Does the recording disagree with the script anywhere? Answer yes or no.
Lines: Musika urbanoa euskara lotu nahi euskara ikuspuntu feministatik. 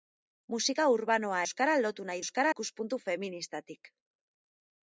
no